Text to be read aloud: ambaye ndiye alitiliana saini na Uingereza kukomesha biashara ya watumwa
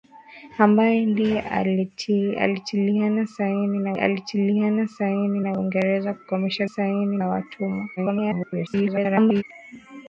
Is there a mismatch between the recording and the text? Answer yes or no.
yes